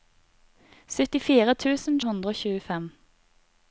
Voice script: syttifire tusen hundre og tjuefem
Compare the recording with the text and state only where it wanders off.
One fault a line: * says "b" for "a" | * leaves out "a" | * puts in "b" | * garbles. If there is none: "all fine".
all fine